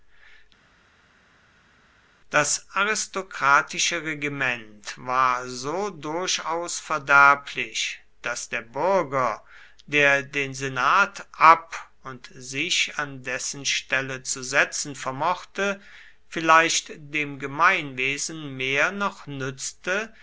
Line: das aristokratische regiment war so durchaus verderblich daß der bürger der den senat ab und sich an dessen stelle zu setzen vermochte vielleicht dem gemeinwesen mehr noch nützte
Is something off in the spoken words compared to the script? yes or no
no